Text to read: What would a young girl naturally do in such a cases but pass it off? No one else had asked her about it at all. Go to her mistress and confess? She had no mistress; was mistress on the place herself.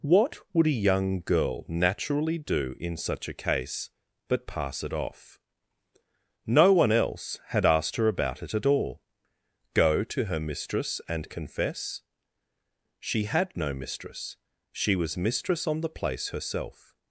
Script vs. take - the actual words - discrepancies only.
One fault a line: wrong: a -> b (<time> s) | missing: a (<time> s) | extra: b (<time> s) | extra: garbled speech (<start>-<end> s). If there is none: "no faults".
wrong: cases -> case (3.4 s)
extra: she (14.7 s)